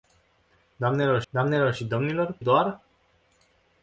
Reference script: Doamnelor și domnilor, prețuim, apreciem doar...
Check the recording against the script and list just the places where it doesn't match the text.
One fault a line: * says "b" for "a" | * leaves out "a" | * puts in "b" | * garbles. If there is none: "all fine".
* puts in "doamnelor"
* leaves out "prețuim apreciem"